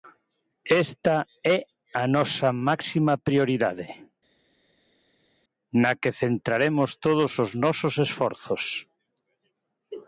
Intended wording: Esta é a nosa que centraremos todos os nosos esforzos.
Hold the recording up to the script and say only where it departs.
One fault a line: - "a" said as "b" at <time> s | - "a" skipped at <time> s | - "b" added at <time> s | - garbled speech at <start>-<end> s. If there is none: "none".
- "máxima prioridade na" added at 2.7 s